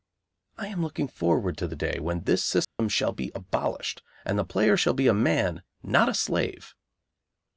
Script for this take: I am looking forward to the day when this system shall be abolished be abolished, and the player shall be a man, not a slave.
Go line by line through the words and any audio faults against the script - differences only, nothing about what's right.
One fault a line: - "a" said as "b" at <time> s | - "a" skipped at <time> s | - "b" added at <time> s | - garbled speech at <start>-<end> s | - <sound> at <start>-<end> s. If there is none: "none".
- dropout at 2.6-2.8 s
- "be abolished" skipped at 4.0 s